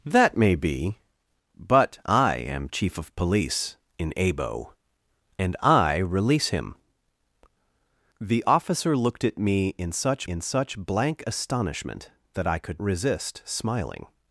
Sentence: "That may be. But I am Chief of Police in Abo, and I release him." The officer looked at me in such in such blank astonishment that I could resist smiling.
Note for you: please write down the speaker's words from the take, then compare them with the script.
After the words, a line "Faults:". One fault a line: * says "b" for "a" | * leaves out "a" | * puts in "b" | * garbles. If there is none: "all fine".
"That may be. But I am Chief of Police in Abo, and I release him." The officer looked at me in such in such blank astonishment that I could resist smiling.
Faults:
all fine